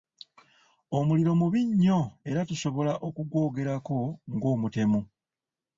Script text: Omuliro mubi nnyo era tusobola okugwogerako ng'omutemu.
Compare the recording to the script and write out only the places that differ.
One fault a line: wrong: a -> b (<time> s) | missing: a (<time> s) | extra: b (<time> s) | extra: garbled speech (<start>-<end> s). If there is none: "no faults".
no faults